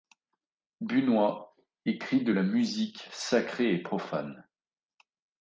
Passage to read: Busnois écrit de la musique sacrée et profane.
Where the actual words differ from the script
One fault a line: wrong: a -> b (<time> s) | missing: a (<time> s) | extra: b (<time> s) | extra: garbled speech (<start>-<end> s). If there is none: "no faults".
no faults